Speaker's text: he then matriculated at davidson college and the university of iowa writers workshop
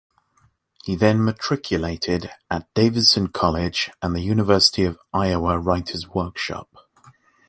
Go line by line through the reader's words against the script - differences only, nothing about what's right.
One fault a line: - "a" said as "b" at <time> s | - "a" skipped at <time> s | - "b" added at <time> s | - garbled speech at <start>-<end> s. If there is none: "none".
none